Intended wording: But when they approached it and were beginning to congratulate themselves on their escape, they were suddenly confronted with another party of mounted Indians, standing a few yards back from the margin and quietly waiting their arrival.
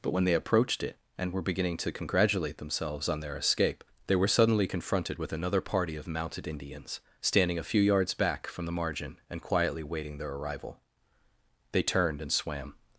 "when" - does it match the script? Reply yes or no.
yes